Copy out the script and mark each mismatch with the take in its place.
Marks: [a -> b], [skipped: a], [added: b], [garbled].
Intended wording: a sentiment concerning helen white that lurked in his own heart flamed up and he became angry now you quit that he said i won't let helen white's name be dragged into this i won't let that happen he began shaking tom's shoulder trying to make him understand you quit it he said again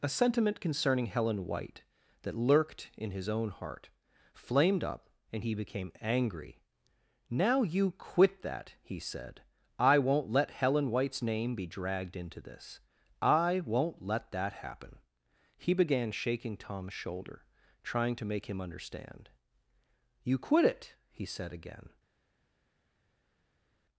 a sentiment concerning helen white that lurked in his own heart flamed up and he became angry now you quit that he said i won't let helen white's name be dragged into this i won't let that happen he began shaking tom's shoulder trying to make him understand you quit it he said again